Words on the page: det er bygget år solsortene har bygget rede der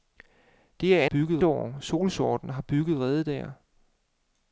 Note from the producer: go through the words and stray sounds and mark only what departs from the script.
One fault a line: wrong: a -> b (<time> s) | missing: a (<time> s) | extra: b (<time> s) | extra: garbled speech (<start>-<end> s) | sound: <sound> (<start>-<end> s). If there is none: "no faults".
no faults